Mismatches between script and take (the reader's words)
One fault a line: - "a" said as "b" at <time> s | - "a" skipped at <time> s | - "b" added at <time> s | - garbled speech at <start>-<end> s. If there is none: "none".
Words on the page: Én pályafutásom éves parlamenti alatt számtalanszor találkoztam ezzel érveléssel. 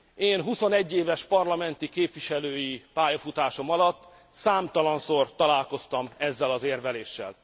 - "pályafutásom" said as "huszonegy" at 0.4 s
- "képviselői pályafutásom" added at 1.9 s
- "az" added at 6.5 s